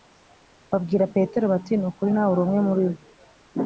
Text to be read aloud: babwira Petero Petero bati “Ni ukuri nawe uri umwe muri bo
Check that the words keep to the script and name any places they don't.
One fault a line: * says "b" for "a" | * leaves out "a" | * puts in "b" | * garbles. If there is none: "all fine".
* leaves out "Petero"